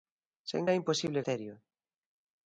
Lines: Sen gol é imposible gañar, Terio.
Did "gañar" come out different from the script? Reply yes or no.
yes